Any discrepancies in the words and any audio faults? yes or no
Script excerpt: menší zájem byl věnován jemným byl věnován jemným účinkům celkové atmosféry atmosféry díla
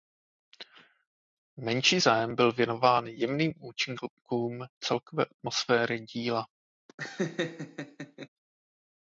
yes